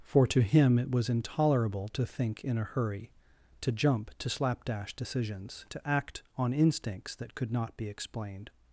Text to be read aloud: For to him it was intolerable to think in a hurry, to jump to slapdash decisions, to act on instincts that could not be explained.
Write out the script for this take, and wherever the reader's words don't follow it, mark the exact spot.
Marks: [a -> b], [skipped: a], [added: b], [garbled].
For to him it was intolerable to think in a hurry, to jump to slapdash decisions, to act on instincts that could not be explained.